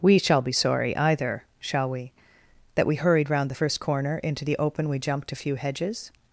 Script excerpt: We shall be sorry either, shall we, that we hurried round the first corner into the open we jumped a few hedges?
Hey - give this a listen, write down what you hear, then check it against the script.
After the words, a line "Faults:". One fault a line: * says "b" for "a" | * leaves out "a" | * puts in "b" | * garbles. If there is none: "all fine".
We shall be sorry either, shall we, that we hurried round the first corner into the open we jumped a few hedges?
Faults:
all fine